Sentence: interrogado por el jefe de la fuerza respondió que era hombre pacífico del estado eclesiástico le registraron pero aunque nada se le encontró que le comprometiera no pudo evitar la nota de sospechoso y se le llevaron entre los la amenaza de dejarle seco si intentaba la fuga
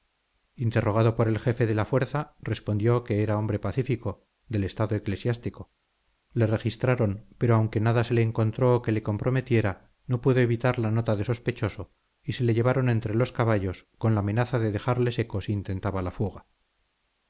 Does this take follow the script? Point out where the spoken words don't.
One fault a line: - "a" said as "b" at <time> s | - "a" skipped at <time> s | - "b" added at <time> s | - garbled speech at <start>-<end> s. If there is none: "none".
- "caballos con" added at 13.3 s